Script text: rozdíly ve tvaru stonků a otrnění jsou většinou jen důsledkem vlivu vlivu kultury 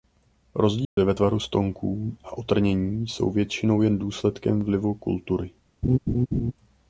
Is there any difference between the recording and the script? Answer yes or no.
yes